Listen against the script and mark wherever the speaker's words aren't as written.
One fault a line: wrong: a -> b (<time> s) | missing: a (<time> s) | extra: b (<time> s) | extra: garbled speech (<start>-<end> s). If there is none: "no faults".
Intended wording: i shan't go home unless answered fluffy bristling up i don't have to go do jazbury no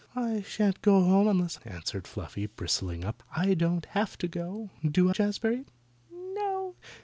no faults